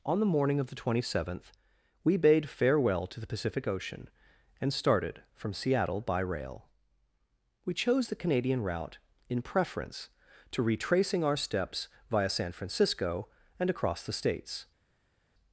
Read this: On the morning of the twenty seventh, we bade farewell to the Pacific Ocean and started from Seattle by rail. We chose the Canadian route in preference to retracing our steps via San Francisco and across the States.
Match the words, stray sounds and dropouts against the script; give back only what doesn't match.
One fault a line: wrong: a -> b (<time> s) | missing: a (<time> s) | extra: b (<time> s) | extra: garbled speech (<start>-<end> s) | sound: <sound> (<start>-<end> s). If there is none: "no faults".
no faults